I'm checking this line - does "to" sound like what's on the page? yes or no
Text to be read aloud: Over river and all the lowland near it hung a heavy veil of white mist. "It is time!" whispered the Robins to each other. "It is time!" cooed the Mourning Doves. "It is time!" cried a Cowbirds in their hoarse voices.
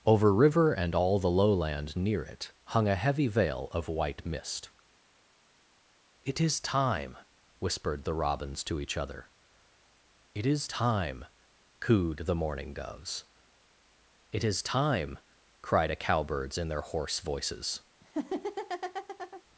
yes